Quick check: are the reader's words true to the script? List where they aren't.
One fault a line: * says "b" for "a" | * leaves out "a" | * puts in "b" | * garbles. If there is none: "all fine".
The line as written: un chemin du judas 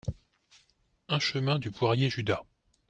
* puts in "poirier"